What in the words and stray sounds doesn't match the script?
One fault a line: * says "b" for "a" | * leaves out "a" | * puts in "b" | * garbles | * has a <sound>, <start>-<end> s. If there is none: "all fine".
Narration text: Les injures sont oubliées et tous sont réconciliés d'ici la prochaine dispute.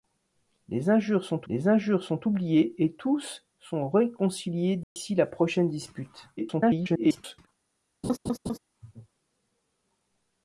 * puts in "les injures sont"
* has a dropout, 4.8-5.0 s
* garbles
* has a laugh, 8.0-8.6 s